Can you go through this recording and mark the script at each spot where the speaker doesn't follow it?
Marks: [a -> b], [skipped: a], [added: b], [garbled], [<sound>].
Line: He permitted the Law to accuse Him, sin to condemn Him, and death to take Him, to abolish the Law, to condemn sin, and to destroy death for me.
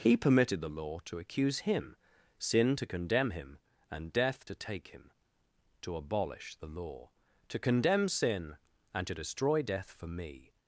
He permitted the Law to accuse Him, sin to condemn Him, and death to take Him, to abolish the Law, to condemn sin, and to destroy death for me.